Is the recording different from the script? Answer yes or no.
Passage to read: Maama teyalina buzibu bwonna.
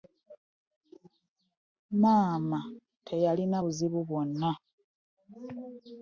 no